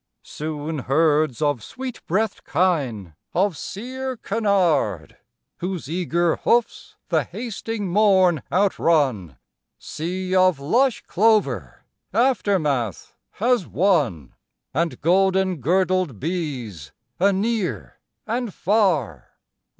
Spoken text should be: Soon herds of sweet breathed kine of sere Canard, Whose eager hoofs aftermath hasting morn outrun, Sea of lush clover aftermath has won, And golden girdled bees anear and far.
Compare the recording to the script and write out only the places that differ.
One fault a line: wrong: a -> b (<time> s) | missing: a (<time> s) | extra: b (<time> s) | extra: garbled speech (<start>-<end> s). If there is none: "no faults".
wrong: aftermath -> the (7.1 s)